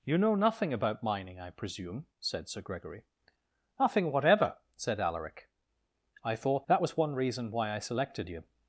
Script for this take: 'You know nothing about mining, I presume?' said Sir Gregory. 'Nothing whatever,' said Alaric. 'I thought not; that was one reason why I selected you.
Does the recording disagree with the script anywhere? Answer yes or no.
yes